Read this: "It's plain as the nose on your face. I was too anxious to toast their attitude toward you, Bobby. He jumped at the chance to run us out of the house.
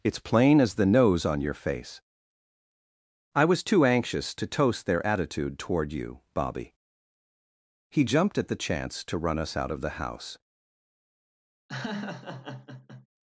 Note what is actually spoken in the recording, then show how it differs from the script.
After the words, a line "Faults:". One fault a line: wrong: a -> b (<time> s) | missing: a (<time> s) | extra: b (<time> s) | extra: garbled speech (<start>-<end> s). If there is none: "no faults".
"It's plain as the nose on your face. I was too anxious to toast their attitude toward you, Bobby. He jumped at the chance to run us out of the house.
Faults:
no faults